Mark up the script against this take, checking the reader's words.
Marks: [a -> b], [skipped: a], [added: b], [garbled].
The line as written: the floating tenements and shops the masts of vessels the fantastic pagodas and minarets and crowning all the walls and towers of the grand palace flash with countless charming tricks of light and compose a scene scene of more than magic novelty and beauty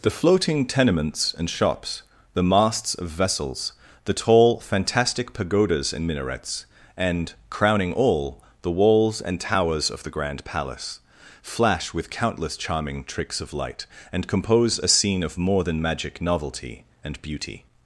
the floating tenements and shops the masts of vessels the [added: tall] fantastic pagodas and minarets and crowning all the walls and towers of the grand palace flash with countless charming tricks of light and compose a scene [skipped: scene] of more than magic novelty and beauty